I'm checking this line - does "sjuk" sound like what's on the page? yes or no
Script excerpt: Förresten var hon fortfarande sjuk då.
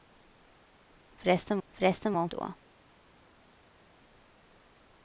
no